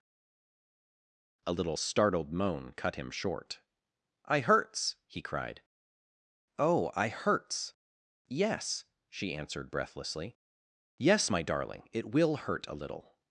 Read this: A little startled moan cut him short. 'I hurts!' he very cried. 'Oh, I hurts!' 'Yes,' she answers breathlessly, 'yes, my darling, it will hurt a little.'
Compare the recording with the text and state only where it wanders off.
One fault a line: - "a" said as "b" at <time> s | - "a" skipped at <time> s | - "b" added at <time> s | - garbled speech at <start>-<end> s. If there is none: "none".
- "very" skipped at 5.2 s
- "answers" said as "answered" at 9.3 s